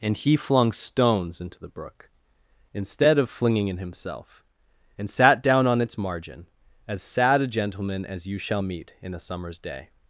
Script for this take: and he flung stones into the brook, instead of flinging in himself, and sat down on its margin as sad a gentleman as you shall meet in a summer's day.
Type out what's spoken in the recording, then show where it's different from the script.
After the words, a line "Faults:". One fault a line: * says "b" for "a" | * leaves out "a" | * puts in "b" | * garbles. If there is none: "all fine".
and he flung stones into the brook, instead of flinging in himself, and sat down on its margin as sad a gentleman as you shall meet in a summer's day.
Faults:
all fine